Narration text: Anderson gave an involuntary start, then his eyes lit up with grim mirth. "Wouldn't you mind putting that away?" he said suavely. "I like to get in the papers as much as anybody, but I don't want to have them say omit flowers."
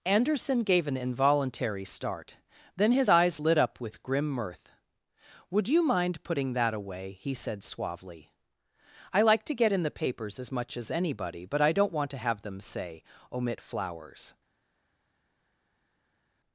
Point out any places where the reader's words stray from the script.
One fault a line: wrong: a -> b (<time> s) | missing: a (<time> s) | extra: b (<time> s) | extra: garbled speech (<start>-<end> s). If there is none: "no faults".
wrong: Wouldn't -> Would (5.5 s)